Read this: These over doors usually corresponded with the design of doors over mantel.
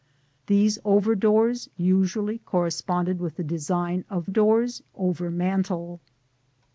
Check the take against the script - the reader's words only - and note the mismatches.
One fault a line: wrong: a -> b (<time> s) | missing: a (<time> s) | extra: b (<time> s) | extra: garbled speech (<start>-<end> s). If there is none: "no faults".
no faults